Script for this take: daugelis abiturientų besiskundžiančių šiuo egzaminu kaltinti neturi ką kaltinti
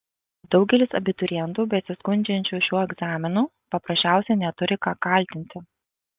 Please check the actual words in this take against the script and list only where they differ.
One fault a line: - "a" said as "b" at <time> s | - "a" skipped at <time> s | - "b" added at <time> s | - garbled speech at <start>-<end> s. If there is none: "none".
- "kaltinti" said as "paprasčiausiai" at 3.8 s